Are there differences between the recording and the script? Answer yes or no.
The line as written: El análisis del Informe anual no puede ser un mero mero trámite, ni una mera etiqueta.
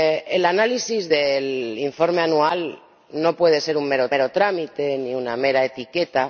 no